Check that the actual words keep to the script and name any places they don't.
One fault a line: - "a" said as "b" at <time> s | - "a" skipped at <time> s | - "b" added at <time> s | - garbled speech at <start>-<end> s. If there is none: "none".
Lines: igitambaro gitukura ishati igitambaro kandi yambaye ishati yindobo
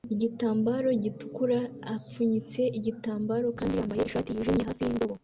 - "ishati" said as "apfunyitse" at 1.9 s
- "yijimye hafi" added at 4.3 s